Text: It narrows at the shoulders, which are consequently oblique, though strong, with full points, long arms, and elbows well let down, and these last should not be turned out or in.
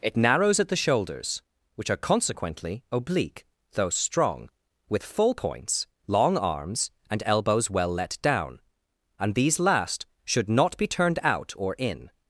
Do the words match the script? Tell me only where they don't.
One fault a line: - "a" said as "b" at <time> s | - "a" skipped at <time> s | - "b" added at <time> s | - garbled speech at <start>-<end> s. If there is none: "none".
none